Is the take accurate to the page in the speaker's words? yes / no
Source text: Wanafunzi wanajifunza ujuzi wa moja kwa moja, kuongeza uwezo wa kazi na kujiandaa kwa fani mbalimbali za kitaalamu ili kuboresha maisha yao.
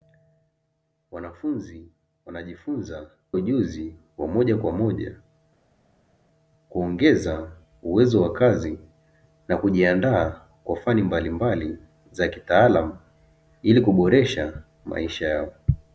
yes